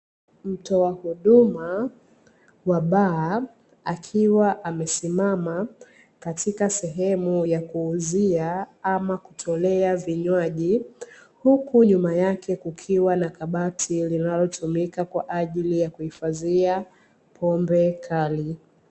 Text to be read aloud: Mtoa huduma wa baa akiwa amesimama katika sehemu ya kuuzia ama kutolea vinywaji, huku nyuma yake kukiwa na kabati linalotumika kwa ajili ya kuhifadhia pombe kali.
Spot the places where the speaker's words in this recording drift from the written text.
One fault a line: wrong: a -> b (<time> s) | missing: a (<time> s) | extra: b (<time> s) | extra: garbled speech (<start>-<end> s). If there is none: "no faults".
no faults